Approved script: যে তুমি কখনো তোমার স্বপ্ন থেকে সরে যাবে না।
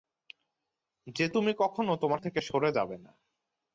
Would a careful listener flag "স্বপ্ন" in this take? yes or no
yes